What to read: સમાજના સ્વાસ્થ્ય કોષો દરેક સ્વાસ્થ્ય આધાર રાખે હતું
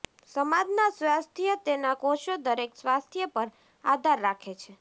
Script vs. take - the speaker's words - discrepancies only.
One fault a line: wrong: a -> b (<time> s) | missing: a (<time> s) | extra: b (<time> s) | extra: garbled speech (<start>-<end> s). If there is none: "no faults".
extra: તેના (1.6 s)
extra: પર (3.3 s)
wrong: હતું -> છે (4.6 s)